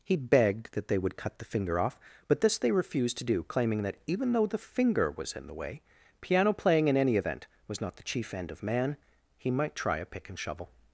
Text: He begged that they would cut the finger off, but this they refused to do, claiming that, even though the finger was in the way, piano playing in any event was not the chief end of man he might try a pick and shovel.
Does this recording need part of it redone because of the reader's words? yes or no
no